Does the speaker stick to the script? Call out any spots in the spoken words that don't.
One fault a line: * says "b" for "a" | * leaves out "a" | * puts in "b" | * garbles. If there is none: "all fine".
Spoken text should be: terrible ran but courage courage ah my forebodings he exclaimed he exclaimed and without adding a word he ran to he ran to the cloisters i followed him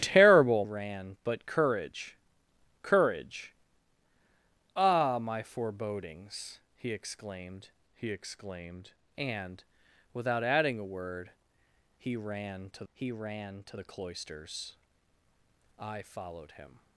all fine